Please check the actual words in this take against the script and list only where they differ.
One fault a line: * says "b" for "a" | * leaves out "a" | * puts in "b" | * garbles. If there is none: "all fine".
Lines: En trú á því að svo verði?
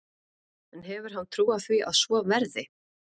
* puts in "hefur hann"